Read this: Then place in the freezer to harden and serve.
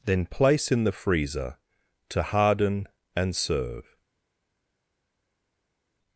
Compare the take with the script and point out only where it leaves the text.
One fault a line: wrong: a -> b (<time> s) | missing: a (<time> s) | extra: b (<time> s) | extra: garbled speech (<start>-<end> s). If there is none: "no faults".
no faults